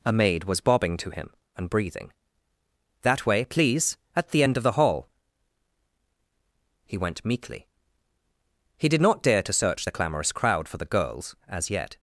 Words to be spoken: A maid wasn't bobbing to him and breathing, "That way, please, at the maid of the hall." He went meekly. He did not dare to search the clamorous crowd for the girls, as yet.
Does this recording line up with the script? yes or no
no